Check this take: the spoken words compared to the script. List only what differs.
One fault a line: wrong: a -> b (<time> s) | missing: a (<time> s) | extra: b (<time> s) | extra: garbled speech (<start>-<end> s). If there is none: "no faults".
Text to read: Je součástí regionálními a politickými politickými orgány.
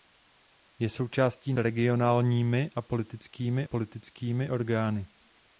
no faults